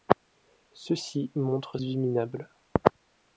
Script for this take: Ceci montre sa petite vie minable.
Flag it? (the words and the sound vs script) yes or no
yes